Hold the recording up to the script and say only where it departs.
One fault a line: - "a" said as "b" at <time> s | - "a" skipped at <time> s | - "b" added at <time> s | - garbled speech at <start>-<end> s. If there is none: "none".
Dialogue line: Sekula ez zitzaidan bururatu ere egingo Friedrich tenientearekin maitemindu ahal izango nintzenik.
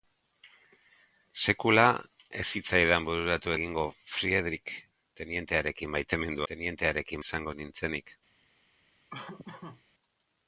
- "ere" skipped at 3.5 s
- "ahal" said as "tenientearekin" at 6.5 s